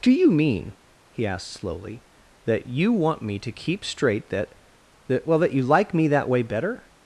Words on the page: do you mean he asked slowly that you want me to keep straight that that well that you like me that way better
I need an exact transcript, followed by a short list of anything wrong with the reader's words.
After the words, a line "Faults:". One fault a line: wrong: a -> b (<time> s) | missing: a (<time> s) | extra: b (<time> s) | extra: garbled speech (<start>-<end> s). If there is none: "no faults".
do you mean he asked slowly that you want me to keep straight that that well that you like me that way better
Faults:
no faults